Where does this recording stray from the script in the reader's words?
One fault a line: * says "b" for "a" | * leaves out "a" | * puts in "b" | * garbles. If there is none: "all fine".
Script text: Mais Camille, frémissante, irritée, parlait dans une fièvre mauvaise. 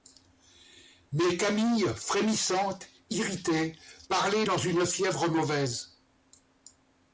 all fine